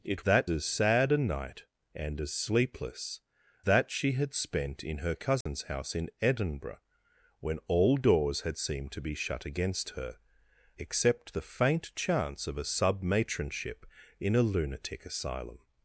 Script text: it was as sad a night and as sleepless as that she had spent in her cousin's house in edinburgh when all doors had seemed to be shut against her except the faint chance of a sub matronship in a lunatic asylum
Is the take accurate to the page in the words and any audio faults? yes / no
no